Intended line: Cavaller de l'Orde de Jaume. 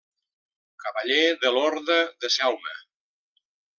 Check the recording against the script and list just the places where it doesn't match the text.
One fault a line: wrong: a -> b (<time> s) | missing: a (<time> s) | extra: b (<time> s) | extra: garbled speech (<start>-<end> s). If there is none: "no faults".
no faults